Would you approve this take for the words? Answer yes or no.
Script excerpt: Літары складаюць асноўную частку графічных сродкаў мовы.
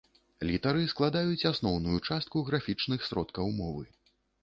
yes